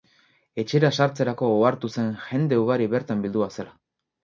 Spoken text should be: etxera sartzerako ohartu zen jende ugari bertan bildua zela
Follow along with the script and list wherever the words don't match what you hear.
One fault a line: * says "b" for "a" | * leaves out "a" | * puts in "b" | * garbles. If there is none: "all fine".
all fine